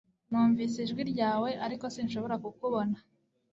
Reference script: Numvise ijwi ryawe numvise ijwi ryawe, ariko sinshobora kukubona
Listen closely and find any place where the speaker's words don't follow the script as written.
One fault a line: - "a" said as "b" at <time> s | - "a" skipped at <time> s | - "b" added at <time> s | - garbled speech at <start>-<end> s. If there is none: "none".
- "numvise ijwi ryawe" skipped at 1.5 s